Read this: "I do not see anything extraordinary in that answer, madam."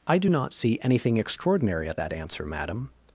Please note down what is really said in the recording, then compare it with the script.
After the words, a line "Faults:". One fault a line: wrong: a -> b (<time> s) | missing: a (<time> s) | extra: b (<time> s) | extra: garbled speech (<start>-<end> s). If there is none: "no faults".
"I do not see anything extraordinary at that answer, madam."
Faults:
wrong: in -> at (1.9 s)